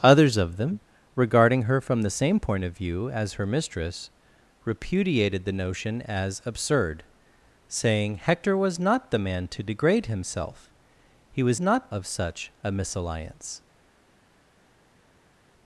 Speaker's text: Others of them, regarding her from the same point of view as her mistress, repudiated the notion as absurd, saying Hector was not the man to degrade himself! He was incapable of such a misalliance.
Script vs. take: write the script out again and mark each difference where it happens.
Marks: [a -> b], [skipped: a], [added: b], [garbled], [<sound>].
Others of them, regarding her from the same point of view as her mistress, repudiated the notion as absurd, saying Hector was not the man to degrade himself! He was [incapable -> not] of such a misalliance.